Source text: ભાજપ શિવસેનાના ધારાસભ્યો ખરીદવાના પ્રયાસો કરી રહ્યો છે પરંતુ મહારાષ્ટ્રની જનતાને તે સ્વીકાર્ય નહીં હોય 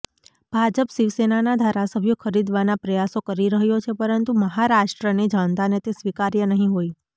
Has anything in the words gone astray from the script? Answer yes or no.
no